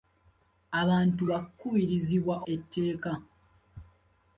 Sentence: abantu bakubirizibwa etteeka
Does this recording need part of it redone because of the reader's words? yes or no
no